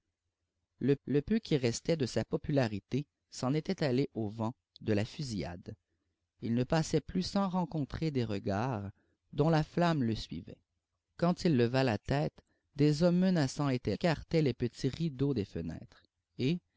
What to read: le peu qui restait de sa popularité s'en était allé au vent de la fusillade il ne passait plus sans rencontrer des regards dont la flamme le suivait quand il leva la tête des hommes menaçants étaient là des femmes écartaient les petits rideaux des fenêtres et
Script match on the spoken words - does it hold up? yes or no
no